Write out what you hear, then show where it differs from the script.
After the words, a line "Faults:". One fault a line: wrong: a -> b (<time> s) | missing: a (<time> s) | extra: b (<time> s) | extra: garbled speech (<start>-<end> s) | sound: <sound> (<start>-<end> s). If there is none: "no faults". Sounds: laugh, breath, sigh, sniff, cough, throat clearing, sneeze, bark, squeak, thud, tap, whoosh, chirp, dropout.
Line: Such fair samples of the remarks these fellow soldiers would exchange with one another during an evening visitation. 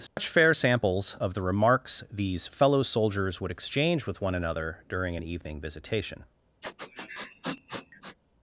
Such fair samples of the remarks these fellow soldiers would exchange with one another during an evening visitation.
Faults:
sound: dropout (0.1-0.2 s)
sound: sniff (6.6-8.2 s)